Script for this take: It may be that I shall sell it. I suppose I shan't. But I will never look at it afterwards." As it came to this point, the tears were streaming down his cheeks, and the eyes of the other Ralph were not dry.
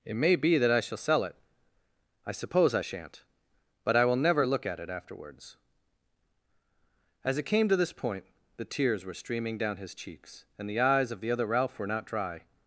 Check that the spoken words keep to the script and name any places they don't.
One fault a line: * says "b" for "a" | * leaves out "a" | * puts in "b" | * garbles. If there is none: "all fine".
all fine